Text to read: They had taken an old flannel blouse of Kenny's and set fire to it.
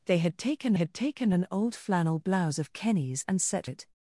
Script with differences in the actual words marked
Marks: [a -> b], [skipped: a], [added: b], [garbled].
They had taken [added: had taken] an old flannel blouse of Kenny's and set [skipped: fire to] it.